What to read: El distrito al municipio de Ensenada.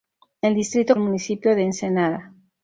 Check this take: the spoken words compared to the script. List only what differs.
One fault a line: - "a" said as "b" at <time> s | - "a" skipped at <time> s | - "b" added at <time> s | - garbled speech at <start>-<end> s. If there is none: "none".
none